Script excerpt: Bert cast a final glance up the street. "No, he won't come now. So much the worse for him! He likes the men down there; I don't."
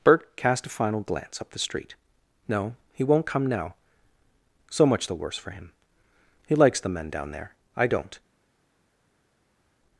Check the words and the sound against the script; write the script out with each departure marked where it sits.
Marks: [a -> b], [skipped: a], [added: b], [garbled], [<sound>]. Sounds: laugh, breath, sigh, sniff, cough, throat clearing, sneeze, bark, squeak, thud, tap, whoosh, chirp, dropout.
Bert cast a final glance up the street. "No, he won't come now. So much the worse for him! He likes the men down there; I don't."